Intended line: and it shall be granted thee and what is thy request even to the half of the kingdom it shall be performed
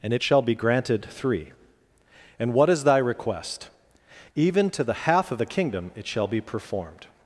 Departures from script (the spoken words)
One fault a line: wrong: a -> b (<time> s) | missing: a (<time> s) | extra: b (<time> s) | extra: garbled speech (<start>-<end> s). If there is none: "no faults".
wrong: thee -> three (1.1 s)